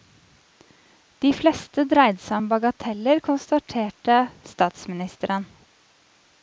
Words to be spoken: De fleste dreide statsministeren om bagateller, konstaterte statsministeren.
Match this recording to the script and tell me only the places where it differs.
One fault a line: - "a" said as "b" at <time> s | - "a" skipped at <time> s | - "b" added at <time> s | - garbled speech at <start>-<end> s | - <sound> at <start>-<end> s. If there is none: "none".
- "statsministeren" said as "seg" at 2.3 s